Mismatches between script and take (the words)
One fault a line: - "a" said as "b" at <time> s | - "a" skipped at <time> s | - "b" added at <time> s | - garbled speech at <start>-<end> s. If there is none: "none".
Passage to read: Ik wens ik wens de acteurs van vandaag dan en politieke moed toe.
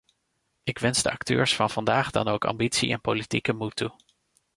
- "ik wens" skipped at 1.0 s
- "ook ambitie" added at 2.3 s